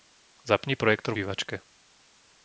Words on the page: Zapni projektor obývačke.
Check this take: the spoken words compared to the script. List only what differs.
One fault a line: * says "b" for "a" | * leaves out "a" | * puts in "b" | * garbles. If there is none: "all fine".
all fine